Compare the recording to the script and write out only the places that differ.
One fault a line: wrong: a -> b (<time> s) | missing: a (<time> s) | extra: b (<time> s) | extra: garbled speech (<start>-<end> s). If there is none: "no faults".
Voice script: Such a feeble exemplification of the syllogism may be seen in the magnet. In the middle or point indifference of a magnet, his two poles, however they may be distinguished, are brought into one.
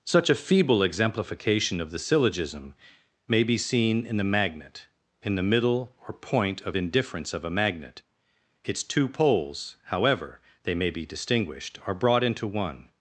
extra: of (6.6 s)
wrong: his -> its (8.6 s)